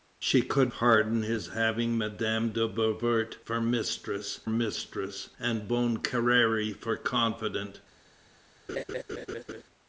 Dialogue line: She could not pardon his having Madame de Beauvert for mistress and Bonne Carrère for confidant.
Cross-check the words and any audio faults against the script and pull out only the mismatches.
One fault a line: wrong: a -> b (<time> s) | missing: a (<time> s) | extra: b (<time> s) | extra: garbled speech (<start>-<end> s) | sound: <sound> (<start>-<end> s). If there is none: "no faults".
missing: not (0.7 s)
extra: mistress (4.5 s)
sound: laugh (8.7-9.6 s)